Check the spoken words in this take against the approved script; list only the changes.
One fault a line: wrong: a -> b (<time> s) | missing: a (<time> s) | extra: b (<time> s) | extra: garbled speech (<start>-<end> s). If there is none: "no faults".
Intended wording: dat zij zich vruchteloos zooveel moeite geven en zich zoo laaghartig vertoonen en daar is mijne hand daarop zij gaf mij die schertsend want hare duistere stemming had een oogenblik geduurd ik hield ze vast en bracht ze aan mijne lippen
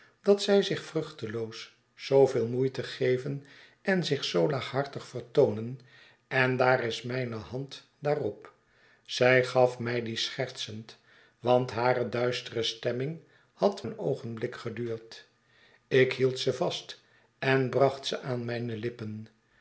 no faults